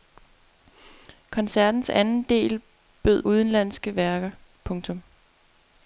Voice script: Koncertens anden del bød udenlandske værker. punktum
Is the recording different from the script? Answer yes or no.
no